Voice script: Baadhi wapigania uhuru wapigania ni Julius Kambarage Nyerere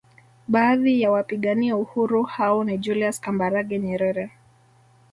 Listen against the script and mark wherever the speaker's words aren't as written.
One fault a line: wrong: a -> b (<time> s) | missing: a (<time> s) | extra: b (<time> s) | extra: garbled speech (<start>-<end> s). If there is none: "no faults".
extra: ya (1.0 s)
wrong: wapigania -> hao (2.2 s)